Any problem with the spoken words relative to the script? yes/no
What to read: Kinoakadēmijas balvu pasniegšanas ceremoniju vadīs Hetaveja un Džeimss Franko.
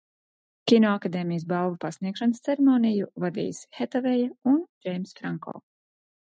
no